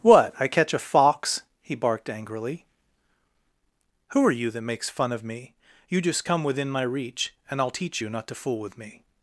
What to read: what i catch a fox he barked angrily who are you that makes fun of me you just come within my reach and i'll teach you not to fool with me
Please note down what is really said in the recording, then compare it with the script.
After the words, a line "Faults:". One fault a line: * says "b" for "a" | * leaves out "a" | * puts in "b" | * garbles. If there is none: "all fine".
what i catch a fox he barked angrily who are you that makes fun of me you just come within my reach and i'll teach you not to fool with me
Faults:
all fine